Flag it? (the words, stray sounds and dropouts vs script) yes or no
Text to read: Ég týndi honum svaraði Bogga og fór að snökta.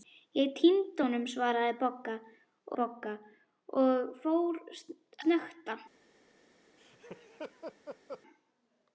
yes